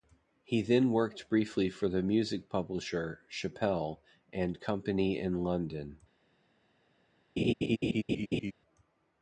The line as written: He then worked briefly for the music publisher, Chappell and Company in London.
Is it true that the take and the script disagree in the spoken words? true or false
false